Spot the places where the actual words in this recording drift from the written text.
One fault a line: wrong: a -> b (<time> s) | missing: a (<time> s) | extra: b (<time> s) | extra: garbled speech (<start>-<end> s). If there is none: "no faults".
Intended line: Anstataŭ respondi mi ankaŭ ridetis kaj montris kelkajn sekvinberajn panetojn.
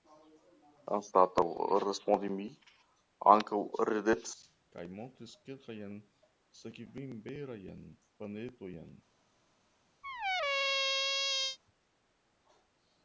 no faults